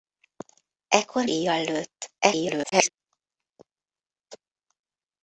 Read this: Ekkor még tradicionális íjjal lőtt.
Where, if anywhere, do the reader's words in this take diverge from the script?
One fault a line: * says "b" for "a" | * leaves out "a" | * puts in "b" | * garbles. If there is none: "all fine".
* leaves out "még tradicionális"
* garbles